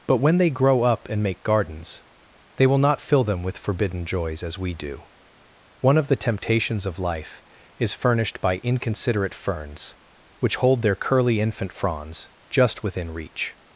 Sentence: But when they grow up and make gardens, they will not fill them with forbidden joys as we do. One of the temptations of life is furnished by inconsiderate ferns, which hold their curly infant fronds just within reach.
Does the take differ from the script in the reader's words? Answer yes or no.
no